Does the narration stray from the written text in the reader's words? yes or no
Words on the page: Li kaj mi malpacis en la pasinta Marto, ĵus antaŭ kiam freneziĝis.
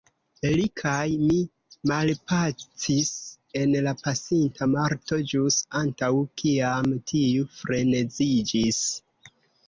yes